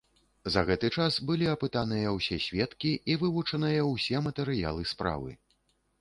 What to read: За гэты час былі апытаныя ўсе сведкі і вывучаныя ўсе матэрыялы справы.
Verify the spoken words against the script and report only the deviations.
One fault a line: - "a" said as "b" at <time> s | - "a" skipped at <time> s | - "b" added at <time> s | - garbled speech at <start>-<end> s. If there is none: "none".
none